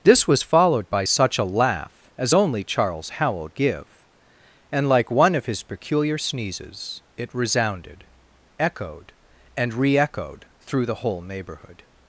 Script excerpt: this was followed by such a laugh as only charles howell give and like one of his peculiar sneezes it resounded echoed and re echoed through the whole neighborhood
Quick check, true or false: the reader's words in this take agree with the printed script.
true